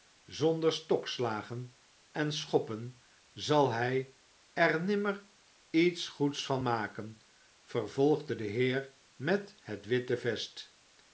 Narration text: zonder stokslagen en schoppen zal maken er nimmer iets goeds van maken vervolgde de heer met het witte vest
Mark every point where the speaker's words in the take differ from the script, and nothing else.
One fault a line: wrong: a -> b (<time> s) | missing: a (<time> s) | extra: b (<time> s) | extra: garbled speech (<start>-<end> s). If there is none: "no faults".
wrong: maken -> hij (3.7 s)